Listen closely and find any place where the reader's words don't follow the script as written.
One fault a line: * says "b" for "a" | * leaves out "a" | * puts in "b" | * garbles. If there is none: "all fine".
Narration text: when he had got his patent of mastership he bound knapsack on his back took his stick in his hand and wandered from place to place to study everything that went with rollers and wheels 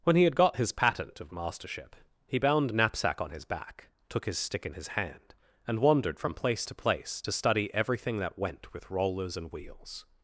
all fine